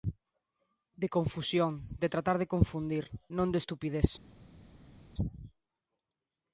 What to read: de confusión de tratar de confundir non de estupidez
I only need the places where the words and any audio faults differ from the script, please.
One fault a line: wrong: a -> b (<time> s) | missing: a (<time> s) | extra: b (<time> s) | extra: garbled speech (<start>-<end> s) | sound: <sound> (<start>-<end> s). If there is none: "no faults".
no faults